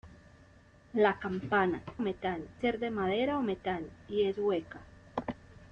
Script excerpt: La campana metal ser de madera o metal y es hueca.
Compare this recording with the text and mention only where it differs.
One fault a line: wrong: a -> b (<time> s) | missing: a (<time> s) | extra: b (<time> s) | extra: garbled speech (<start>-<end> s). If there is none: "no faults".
no faults